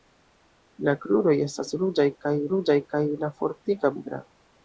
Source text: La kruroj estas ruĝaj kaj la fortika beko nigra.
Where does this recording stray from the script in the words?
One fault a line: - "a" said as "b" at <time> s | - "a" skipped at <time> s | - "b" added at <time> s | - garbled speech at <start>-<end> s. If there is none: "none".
- "ruĝaj kaj" added at 2.6 s
- "beko" skipped at 4.0 s